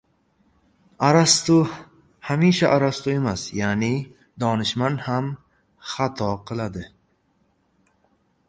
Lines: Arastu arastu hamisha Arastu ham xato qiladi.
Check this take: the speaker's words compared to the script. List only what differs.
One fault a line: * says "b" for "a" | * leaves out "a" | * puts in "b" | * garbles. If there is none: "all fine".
* puts in "hamisha"
* says "emas ya'ni donishmand" for "hamisha Arastu"